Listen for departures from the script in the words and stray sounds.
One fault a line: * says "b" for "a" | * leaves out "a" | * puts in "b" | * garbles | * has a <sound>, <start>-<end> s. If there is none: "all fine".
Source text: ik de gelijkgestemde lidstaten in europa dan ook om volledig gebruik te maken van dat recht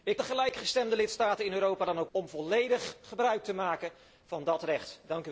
all fine